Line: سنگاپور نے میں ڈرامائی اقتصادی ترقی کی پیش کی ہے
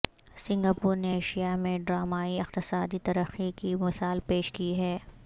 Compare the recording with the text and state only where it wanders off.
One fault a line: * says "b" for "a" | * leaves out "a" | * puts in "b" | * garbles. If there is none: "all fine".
* puts in "ایشیا"
* puts in "مثال"